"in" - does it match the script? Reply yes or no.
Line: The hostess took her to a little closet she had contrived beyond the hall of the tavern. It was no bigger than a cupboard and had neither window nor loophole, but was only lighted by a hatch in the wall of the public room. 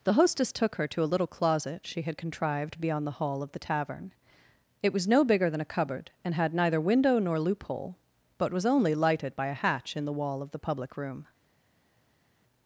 yes